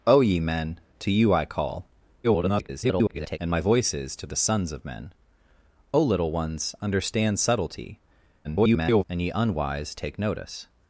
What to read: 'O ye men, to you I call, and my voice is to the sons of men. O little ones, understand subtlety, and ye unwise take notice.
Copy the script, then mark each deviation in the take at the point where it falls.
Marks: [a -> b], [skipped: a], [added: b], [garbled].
'O ye men, to you I call, [garbled] and my voice is to the sons of men. O little ones, understand subtlety, [garbled] and ye unwise take notice.